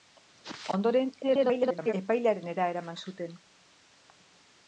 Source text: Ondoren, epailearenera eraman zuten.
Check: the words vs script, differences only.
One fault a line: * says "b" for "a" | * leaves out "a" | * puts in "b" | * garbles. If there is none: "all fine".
* garbles